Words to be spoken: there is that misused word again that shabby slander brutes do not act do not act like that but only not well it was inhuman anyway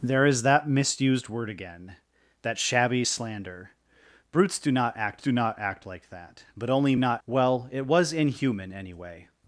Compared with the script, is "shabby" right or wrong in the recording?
right